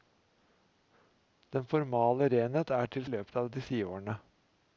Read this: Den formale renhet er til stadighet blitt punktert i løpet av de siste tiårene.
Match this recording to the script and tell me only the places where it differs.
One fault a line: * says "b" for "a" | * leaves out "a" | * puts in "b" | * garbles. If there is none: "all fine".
* leaves out "stadighet blitt punktert"
* leaves out "siste"